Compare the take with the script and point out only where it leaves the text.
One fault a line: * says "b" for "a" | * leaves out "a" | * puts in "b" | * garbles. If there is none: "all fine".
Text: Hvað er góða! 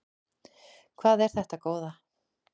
* puts in "þetta"